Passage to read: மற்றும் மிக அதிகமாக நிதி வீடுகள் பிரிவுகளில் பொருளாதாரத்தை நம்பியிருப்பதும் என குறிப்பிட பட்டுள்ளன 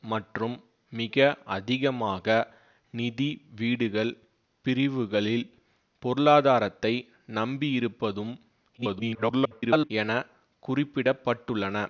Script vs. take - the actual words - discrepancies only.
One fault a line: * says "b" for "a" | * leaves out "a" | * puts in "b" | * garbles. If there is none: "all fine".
* garbles